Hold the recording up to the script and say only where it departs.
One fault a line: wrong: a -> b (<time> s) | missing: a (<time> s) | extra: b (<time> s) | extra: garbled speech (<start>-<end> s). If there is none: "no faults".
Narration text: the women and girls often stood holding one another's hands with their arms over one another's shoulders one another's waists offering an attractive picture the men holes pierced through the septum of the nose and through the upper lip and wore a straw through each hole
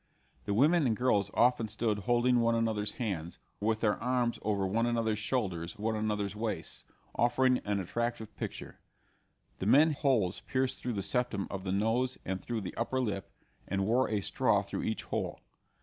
no faults